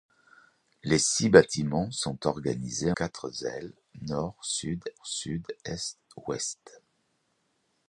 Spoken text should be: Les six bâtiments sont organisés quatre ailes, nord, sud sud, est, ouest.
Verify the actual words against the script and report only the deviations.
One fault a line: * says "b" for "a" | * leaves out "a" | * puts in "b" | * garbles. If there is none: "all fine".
all fine